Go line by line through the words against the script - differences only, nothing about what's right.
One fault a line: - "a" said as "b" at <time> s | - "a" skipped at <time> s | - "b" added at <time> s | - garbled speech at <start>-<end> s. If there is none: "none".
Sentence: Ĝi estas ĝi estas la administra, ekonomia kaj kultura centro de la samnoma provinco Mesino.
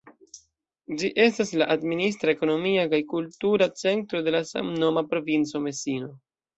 - "ĝi estas" skipped at 1.5 s